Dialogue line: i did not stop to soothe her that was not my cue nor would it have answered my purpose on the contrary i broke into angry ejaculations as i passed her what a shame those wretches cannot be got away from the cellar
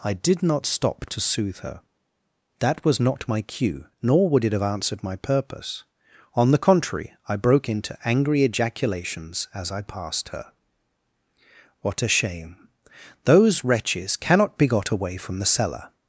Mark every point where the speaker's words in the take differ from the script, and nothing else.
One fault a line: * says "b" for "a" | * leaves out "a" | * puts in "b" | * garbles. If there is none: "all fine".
all fine